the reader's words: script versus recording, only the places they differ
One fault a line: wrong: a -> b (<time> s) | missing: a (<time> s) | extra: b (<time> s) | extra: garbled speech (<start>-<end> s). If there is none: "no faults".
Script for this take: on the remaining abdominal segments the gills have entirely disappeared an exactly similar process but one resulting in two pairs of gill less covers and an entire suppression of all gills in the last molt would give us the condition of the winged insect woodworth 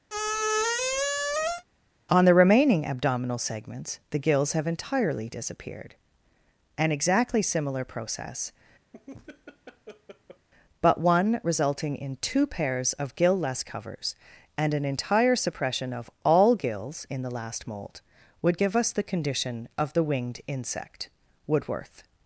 no faults